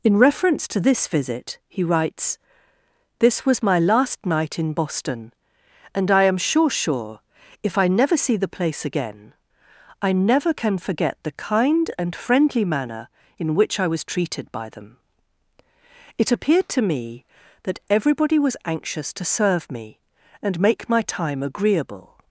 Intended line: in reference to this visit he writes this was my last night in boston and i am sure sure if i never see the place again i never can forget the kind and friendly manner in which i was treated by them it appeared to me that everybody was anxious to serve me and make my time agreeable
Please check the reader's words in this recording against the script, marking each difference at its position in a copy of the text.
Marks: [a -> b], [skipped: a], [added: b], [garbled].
in reference to this visit he writes this was my last night in boston and i am sure sure if i never see the place again i never can forget the kind and friendly manner in which i was treated by them it appeared to me that everybody was anxious to serve me and make my time agreeable